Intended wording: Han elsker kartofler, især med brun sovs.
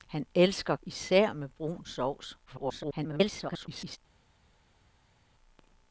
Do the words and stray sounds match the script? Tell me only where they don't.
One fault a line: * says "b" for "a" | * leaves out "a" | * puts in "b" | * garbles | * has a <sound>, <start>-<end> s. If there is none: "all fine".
* leaves out "kartofler"
* garbles